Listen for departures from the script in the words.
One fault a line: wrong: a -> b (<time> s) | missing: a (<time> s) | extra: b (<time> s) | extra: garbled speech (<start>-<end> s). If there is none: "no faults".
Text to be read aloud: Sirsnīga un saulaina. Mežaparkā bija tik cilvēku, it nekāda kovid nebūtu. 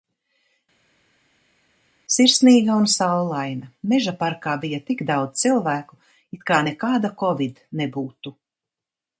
extra: daudz (5.1 s)
extra: kā (6.5 s)